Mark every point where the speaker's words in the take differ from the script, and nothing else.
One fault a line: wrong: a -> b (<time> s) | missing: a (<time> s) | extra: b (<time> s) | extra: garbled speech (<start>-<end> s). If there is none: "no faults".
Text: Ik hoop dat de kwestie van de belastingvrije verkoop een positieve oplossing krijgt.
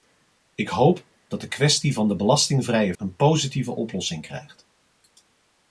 missing: verkoop (3.0 s)